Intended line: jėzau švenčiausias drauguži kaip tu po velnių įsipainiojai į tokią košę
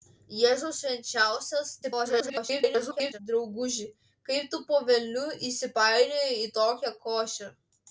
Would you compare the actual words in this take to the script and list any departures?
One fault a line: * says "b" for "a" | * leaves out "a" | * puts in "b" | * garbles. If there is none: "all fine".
* garbles